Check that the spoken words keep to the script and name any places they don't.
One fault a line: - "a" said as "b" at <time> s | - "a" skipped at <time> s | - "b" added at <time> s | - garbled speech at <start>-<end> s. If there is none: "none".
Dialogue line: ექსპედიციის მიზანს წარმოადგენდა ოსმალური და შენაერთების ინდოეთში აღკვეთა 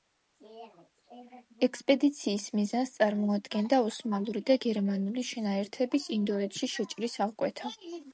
- "გერმანული" added at 4.7 s
- "შეჭრის" added at 6.8 s